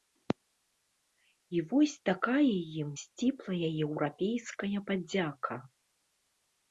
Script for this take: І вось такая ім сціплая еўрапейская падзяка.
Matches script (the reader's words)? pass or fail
pass